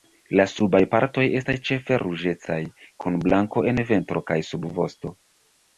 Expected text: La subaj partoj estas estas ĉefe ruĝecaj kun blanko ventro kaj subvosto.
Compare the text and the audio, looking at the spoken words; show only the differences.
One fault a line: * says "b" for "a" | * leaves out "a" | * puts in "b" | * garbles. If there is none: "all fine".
* leaves out "estas"
* puts in "en"